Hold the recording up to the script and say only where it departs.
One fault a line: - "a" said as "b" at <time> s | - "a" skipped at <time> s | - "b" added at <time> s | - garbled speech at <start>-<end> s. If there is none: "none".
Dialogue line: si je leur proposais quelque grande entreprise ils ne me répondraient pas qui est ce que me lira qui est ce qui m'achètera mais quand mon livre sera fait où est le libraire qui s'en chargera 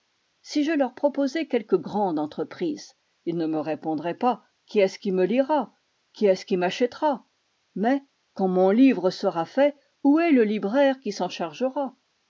- "que" said as "qui" at 5.0 s